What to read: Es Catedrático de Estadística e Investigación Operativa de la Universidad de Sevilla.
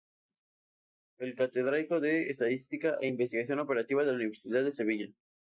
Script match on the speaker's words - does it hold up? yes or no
yes